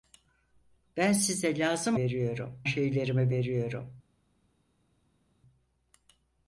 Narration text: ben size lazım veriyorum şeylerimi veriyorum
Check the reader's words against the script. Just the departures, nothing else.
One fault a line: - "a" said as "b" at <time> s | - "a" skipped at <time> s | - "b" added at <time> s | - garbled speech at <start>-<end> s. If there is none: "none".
none